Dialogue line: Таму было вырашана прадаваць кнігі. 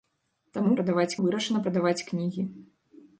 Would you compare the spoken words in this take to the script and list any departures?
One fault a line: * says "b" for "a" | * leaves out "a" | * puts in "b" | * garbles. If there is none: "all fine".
* says "прадаваць" for "было"